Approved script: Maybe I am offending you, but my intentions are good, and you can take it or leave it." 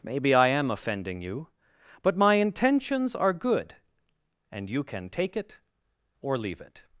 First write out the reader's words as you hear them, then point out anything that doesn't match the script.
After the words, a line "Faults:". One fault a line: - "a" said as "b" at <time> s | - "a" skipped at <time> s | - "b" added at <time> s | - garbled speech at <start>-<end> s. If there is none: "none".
Maybe I am offending you, but my intentions are good, and you can take it or leave it."
Faults:
none